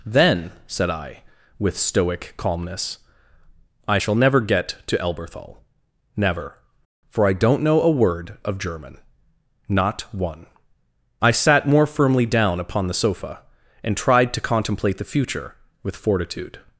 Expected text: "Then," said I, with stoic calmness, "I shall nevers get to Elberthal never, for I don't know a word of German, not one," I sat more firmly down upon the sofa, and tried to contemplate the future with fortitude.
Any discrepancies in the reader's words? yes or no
yes